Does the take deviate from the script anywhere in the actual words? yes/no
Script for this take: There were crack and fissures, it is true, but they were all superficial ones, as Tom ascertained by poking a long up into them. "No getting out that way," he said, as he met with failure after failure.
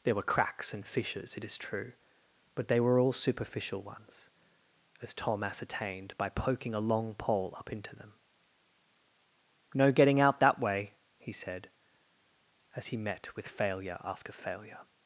yes